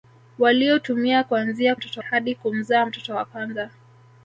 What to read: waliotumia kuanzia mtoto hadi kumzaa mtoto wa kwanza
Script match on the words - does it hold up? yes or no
yes